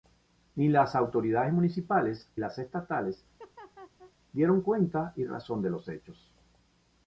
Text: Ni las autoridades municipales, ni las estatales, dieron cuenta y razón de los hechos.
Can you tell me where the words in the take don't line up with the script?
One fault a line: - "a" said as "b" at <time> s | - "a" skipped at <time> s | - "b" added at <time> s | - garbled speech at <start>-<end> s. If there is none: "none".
- "ni" skipped at 2.3 s